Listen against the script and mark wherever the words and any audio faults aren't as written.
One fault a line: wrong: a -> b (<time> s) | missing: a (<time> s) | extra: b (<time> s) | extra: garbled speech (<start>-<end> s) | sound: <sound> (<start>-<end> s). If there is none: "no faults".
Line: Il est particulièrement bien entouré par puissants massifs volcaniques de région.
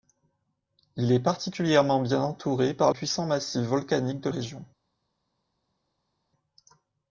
no faults